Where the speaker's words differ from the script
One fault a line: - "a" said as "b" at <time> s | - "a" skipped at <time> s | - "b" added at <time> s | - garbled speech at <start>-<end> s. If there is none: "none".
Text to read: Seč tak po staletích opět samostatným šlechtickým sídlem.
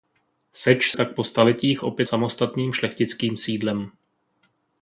none